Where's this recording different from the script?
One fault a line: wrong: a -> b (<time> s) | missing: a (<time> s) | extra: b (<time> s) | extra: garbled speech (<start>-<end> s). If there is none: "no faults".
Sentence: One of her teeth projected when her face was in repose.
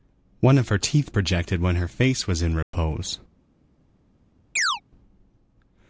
no faults